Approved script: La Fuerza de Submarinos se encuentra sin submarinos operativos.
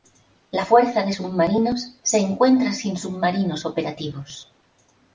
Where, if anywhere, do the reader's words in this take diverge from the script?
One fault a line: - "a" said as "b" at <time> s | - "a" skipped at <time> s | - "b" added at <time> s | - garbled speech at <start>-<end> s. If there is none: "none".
none